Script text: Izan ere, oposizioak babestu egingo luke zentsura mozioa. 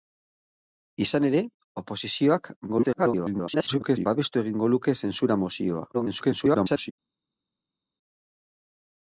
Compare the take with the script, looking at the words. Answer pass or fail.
fail